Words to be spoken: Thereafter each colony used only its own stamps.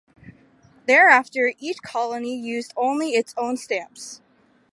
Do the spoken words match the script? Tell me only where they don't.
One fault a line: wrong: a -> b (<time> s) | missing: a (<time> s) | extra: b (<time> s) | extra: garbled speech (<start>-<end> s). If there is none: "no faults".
no faults